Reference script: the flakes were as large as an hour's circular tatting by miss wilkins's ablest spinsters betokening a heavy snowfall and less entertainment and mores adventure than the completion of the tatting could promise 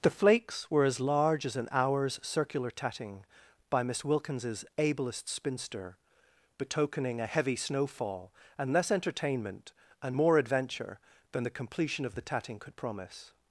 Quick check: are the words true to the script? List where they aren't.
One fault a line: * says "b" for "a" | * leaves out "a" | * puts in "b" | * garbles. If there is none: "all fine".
* says "spinster" for "spinsters"
* says "more" for "mores"